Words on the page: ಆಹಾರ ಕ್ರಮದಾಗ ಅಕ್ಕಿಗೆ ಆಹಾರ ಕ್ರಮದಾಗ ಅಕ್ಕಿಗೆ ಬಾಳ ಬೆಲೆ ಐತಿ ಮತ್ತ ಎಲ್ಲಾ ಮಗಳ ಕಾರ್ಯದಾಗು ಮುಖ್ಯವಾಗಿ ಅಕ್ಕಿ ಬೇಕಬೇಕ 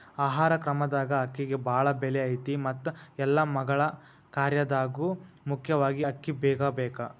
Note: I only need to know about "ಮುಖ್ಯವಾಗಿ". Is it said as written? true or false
true